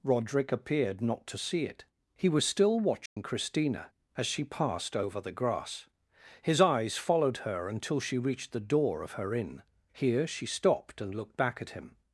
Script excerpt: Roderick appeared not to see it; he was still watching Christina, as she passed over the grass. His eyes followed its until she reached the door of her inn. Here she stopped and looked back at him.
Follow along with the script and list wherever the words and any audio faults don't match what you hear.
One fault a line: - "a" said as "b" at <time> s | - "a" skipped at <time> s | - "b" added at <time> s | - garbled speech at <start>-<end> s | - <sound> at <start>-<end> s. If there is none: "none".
- dropout at 3.1-3.2 s
- "its" said as "her" at 7.4 s